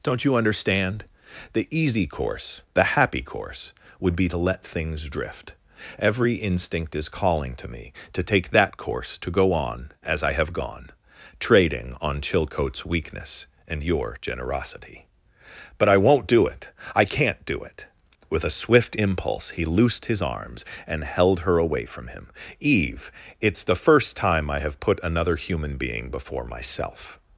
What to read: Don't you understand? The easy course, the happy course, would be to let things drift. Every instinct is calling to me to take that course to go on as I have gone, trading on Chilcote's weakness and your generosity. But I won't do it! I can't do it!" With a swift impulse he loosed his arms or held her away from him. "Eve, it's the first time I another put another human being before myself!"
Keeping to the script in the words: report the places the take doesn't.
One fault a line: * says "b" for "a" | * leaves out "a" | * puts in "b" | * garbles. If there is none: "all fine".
* says "and" for "or"
* says "have" for "another"